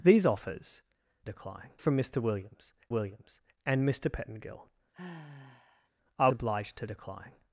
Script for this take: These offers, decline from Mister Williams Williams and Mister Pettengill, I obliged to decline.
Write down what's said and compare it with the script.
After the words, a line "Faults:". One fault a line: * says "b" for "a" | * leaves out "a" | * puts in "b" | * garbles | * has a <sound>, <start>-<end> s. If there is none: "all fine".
These offers, decline from Mister Williams Williams and Mister Pettengill, I obliged to decline.
Faults:
* has a sigh, 4.9-5.9 s